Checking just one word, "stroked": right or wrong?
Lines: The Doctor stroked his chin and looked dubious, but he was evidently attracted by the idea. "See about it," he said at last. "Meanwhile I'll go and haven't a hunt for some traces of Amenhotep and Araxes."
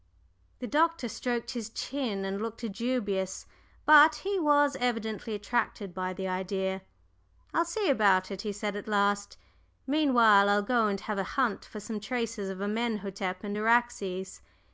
right